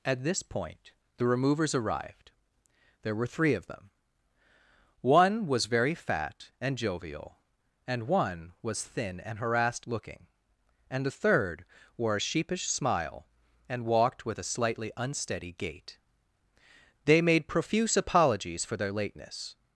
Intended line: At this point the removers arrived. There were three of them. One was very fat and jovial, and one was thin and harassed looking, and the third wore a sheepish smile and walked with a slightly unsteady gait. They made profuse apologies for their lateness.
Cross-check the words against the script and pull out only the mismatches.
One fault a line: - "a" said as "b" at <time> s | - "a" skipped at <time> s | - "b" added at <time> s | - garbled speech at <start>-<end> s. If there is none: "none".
none